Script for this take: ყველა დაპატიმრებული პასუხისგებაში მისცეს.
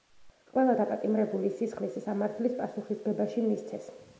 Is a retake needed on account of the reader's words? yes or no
yes